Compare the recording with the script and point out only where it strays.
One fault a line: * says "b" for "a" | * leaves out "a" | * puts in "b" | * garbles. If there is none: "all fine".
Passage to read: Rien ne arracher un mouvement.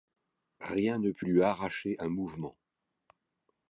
* puts in "put lui"